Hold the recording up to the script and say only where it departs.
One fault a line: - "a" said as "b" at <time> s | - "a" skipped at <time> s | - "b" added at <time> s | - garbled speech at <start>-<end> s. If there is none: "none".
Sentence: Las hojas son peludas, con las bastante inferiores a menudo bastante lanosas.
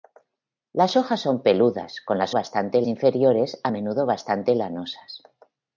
none